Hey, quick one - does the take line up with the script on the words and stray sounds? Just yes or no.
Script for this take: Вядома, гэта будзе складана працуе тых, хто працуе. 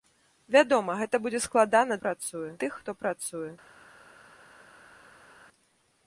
yes